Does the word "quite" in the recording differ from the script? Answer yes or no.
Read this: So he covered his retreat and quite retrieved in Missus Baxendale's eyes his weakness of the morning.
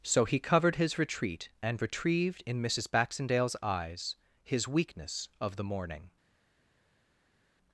yes